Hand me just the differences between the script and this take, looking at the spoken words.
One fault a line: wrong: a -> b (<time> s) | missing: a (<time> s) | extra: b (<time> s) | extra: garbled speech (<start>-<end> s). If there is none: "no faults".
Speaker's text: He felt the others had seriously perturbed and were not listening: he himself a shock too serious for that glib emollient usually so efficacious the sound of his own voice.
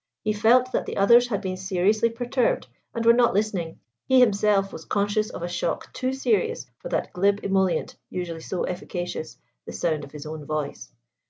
extra: that (0.7 s)
extra: been (1.4 s)
extra: was conscious of (4.7 s)